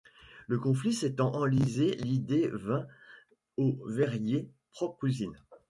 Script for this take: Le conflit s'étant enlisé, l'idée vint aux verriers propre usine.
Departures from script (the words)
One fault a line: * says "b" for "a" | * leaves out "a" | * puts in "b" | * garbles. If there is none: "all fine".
all fine